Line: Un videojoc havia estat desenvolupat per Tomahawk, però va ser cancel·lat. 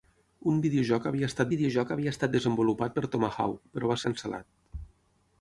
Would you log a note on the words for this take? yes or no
yes